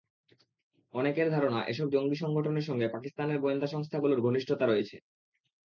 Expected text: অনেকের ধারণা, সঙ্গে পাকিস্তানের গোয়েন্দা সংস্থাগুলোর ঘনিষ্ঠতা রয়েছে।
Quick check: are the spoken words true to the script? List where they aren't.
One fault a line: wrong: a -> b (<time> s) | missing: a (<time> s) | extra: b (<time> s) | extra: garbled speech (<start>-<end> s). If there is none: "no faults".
extra: এসব জঙ্গি সংগঠনের (1.6 s)